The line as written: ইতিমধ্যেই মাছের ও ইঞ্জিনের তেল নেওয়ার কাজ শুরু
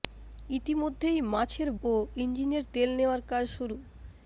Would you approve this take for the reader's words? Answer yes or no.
yes